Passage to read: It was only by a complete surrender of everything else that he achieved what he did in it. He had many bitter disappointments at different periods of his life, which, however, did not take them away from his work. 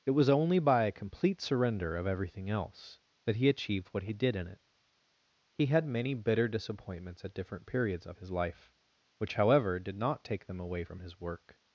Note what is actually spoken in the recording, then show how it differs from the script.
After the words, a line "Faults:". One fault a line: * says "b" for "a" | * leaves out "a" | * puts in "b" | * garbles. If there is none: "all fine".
It was only by a complete surrender of everything else that he achieved what he did in it. He had many bitter disappointments at different periods of his life, which, however, did not take them away from his work.
Faults:
all fine